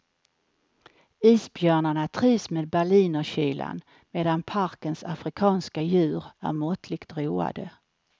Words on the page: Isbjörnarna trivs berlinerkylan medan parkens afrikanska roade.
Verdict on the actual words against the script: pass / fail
fail